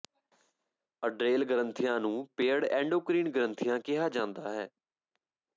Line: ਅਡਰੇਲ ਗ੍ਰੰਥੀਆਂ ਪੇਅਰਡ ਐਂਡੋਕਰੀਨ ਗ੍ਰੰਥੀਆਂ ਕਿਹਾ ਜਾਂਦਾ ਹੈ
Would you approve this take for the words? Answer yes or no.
no